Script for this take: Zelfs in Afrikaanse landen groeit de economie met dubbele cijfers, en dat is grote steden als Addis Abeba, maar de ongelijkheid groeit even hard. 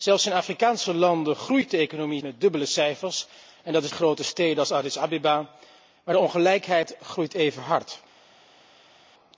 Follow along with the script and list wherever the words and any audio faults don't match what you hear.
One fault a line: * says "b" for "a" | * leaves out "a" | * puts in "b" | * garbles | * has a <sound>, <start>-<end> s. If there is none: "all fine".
all fine